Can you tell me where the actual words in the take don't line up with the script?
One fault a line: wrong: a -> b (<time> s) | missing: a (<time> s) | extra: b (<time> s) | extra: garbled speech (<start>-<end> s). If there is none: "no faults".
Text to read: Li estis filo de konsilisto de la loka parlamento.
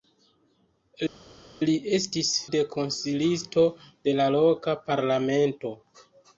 missing: filo (2.3 s)